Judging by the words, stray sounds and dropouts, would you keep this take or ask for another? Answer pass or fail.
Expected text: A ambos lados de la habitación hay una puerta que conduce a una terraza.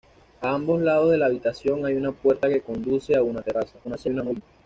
fail